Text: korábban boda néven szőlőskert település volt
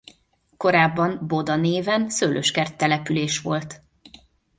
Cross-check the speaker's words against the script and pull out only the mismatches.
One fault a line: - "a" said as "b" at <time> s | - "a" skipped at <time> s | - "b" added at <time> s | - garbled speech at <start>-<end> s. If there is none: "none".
none